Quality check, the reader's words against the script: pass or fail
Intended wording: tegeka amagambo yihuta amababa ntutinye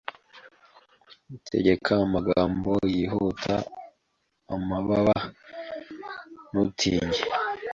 pass